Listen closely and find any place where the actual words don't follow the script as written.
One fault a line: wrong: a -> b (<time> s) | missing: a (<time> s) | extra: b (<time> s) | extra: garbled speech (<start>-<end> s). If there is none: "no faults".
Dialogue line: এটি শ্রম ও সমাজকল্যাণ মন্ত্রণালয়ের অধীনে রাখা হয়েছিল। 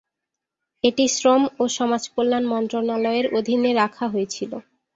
no faults